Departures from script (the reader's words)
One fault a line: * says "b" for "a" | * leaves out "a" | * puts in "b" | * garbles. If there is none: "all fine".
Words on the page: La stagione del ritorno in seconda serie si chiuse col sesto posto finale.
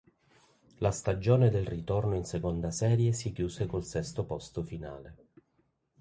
all fine